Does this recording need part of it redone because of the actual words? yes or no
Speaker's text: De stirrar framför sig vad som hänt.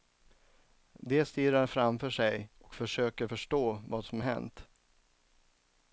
yes